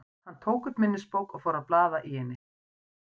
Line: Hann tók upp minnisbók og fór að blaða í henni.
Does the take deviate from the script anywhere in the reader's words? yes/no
no